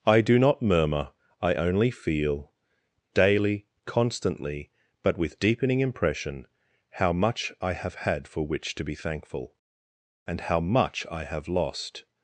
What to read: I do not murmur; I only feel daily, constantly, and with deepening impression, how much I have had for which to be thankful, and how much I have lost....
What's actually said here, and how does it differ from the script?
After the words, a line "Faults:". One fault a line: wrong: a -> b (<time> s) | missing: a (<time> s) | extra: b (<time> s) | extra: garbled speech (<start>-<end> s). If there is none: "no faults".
I do not murmur; I only feel daily, constantly, but with deepening impression, how much I have had for which to be thankful, and how much I have lost....
Faults:
wrong: and -> but (5.0 s)